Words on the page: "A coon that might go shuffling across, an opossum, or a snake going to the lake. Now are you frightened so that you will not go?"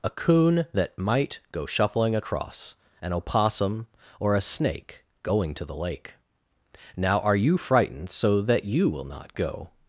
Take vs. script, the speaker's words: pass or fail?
pass